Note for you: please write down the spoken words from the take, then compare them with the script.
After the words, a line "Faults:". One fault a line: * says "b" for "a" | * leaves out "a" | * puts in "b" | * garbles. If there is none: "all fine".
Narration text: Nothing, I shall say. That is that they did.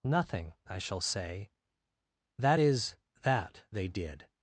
Nothing, I shall say. That is that they did.
Faults:
all fine